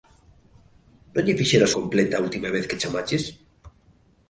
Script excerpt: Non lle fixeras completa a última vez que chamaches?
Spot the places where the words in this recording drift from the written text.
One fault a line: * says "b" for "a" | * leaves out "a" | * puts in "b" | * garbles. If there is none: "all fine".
all fine